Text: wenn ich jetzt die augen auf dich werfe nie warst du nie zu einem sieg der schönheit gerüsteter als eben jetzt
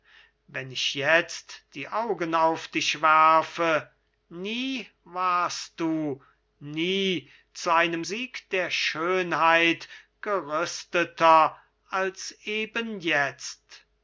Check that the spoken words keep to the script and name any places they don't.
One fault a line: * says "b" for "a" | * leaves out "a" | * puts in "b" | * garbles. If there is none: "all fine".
all fine